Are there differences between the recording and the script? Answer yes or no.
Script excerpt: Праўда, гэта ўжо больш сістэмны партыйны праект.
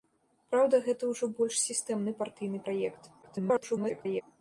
yes